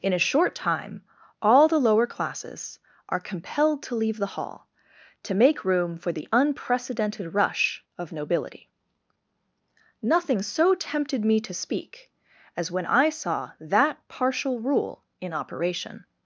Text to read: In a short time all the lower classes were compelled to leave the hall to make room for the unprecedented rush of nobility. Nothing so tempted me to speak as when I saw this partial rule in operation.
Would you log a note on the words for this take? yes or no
yes